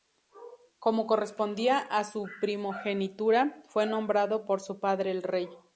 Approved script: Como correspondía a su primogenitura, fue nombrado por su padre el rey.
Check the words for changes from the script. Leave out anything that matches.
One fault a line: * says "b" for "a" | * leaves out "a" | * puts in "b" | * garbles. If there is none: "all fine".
all fine